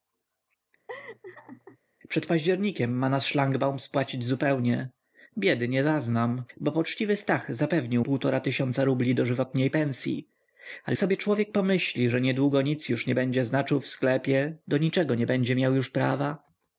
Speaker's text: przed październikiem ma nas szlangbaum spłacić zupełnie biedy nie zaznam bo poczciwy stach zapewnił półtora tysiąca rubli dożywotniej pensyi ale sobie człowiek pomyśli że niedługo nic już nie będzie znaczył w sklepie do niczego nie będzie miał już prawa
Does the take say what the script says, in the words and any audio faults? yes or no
no